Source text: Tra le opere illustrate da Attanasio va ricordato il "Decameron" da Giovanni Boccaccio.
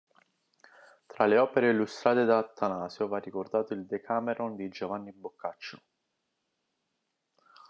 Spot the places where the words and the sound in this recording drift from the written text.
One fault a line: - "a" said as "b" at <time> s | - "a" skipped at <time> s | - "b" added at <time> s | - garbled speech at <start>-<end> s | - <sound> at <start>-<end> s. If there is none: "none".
- "da" said as "di" at 4.5 s